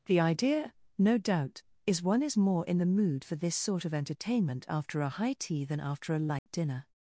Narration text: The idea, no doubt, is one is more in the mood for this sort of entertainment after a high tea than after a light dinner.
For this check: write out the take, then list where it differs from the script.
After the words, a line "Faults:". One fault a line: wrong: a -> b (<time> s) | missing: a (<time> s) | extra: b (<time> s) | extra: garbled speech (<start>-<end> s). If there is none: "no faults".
The idea, no doubt, is one is more in the mood for this sort of entertainment after a high tea than after a light dinner.
Faults:
no faults